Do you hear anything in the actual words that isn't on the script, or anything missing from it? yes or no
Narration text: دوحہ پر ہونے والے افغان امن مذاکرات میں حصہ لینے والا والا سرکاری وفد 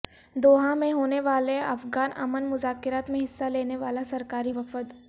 yes